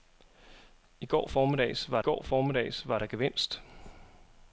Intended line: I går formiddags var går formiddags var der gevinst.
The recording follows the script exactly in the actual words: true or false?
true